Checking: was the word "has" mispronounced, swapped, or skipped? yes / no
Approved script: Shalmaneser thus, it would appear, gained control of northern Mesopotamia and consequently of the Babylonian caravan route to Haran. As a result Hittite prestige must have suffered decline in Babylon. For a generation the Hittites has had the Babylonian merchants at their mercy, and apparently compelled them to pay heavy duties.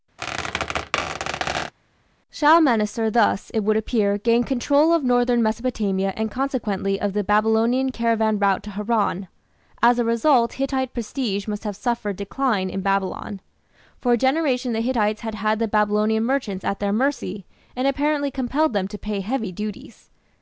yes